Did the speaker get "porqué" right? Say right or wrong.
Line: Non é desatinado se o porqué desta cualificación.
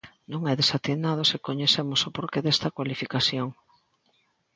right